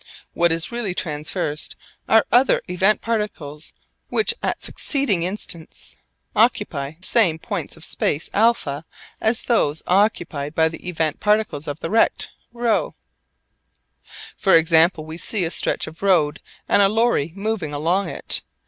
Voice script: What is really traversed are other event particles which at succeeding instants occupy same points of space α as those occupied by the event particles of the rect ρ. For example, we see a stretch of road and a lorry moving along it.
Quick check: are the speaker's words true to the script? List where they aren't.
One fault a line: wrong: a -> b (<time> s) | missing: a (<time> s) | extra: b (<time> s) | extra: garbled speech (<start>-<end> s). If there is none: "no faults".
no faults